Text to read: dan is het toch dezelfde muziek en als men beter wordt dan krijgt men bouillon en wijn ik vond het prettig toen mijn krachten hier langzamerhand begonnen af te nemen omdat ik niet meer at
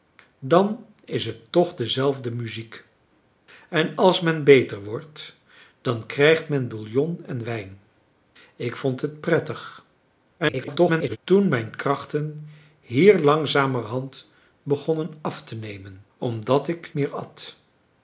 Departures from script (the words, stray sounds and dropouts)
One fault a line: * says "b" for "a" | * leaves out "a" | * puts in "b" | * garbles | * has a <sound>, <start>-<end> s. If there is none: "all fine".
* garbles
* leaves out "niet"